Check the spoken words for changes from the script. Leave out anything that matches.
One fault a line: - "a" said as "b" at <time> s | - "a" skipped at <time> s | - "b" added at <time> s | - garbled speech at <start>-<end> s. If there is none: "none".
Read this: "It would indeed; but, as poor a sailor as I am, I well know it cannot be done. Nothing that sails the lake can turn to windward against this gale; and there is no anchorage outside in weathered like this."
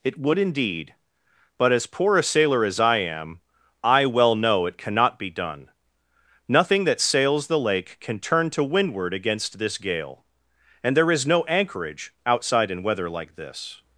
- "weathered" said as "weather" at 12.8 s